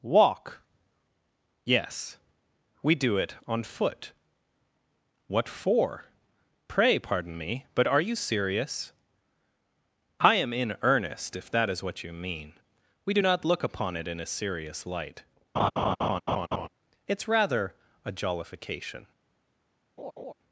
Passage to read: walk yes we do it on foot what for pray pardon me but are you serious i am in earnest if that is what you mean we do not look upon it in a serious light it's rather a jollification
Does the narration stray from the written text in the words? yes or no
no